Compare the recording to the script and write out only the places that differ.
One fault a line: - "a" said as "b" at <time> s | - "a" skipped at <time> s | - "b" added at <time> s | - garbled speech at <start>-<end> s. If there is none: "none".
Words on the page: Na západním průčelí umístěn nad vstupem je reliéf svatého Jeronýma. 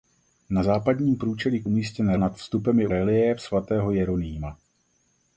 none